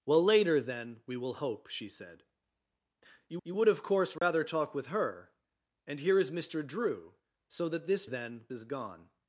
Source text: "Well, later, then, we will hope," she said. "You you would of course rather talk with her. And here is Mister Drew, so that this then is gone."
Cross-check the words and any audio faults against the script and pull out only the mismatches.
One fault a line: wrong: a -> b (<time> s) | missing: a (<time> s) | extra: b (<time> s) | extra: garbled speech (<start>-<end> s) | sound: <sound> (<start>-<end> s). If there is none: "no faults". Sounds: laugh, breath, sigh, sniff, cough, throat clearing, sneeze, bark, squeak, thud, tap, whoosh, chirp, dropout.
sound: dropout (4.2-4.2 s)